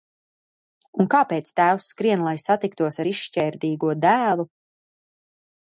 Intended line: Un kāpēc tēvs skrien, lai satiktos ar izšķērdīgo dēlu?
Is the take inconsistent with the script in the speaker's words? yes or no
no